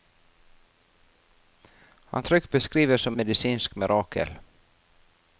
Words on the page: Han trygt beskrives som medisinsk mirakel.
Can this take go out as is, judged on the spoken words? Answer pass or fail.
pass